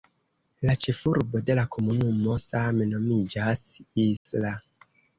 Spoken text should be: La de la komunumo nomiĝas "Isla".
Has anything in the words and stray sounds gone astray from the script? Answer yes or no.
yes